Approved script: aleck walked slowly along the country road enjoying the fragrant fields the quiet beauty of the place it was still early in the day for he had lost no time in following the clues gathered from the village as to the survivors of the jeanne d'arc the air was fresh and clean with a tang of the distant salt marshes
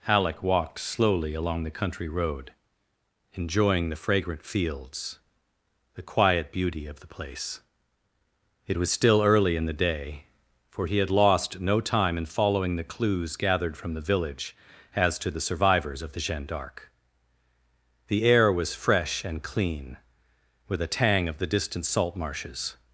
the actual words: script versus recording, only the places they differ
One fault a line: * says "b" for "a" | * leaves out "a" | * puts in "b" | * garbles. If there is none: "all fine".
* says "halleck" for "aleck"